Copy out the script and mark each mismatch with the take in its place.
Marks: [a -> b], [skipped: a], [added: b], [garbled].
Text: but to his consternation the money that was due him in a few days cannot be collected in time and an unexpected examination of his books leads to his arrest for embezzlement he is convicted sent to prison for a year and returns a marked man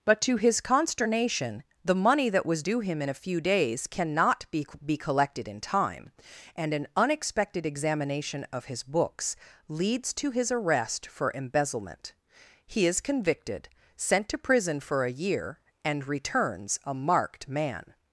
but to his consternation the money that was due him in a few days cannot be [added: be] collected in time and an unexpected examination of his books leads to his arrest for embezzlement he is convicted sent to prison for a year and returns a marked man